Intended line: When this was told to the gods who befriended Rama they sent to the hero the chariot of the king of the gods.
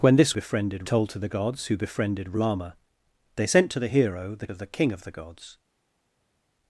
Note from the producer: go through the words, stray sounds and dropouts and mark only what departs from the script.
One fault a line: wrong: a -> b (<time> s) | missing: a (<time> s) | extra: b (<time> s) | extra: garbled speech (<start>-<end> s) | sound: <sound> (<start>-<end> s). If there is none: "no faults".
wrong: was -> befriended (0.3 s)
missing: chariot (4.5 s)